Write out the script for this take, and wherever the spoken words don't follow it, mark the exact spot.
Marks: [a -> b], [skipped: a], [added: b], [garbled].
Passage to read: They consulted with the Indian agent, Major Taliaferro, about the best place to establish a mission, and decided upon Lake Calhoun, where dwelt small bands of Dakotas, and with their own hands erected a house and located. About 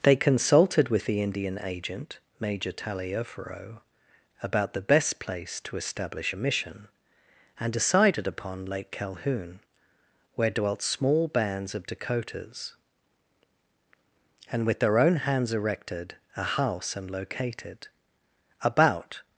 They consulted with the Indian agent, Major Taliaferro, about the best place to establish a mission, and decided upon Lake Calhoun, where dwelt small bands of Dakotas, and with their own hands erected a house and located. About